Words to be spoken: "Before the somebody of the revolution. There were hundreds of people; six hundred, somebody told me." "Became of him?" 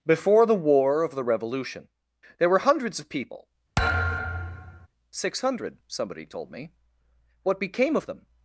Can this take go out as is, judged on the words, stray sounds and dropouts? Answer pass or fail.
fail